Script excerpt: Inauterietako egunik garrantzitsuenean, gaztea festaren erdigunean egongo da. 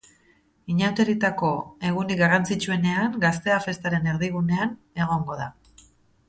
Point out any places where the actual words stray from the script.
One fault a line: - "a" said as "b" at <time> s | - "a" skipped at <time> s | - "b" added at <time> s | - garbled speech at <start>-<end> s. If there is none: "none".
none